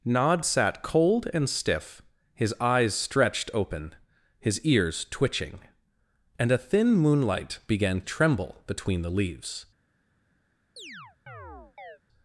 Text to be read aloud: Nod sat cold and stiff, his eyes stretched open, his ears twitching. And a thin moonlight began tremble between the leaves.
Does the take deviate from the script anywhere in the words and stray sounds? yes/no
yes